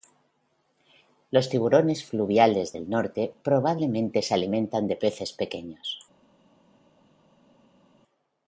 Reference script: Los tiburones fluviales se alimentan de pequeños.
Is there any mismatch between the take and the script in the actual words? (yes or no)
yes